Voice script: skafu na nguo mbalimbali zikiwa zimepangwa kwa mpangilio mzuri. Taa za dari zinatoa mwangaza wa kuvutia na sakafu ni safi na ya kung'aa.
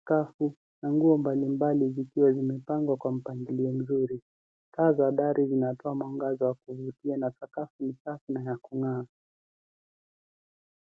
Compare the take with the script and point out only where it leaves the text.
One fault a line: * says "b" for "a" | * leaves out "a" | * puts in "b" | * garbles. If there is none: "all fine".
all fine